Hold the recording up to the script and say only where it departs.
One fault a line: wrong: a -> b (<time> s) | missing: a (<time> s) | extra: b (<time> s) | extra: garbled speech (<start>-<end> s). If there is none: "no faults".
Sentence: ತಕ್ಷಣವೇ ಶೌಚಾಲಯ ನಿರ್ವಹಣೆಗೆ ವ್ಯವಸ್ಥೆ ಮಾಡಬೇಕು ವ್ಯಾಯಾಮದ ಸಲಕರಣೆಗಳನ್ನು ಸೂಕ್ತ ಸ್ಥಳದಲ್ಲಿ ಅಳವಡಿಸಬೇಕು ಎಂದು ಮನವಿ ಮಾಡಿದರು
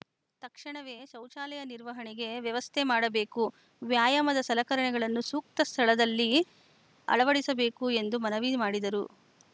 no faults